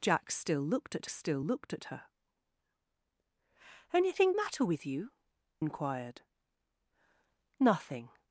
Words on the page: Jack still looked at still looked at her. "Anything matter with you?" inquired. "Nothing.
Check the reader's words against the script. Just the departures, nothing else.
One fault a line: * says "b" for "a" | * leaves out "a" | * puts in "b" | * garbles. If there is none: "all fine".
all fine